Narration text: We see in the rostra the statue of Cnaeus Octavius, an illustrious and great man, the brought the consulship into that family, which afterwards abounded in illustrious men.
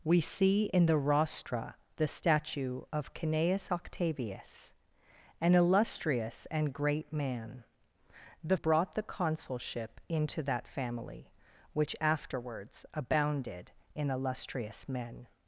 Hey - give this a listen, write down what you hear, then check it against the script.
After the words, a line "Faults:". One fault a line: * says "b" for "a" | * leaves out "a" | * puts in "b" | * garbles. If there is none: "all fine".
We see in the rostra the statue of Cnaeus Octavius, an illustrious and great man, the brought the consulship into that family, which afterwards abounded in illustrious men.
Faults:
all fine